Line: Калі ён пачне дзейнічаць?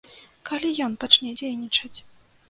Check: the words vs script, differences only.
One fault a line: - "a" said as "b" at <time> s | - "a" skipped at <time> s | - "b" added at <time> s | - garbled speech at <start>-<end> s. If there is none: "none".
none